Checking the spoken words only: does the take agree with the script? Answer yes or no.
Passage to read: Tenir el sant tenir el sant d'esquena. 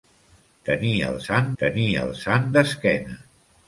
yes